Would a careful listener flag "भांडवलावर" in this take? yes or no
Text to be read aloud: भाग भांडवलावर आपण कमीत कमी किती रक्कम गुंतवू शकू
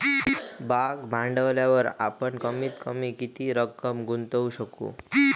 no